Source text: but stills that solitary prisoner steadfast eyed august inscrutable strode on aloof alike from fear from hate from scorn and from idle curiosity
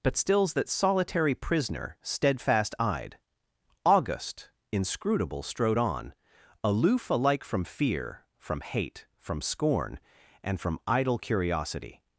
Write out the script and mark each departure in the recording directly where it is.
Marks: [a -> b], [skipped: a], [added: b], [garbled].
but stills that solitary prisoner steadfast eyed august inscrutable strode on aloof alike from fear from hate from scorn and from idle curiosity